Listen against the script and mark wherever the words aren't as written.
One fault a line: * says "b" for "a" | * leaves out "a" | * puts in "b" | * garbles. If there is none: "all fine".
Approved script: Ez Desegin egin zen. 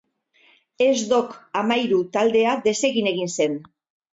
* puts in "Dok Amairu taldea"